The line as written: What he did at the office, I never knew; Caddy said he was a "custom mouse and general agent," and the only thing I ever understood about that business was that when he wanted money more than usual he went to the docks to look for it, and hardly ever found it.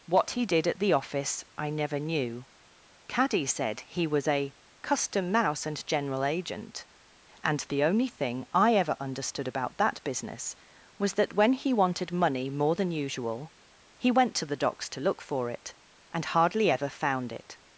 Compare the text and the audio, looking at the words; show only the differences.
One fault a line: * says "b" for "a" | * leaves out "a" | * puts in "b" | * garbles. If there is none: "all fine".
all fine